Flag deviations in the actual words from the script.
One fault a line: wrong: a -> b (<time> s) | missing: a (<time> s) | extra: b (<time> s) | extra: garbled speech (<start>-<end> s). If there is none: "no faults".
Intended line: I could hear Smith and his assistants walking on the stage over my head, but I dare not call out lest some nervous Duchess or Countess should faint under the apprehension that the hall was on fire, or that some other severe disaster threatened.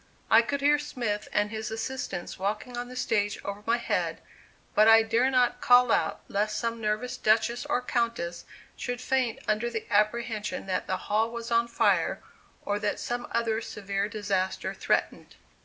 no faults